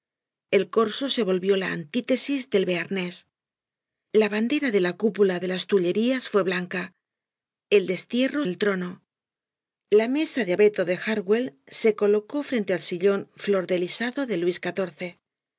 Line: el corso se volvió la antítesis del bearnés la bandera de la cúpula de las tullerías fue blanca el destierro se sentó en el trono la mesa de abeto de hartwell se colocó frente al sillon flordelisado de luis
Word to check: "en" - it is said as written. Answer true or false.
false